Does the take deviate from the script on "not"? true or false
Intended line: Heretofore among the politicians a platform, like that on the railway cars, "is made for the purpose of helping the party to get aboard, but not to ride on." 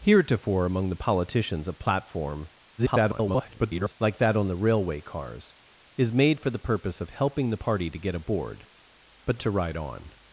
true